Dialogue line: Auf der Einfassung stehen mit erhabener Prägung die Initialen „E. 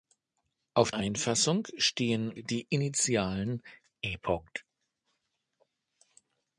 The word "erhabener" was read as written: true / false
false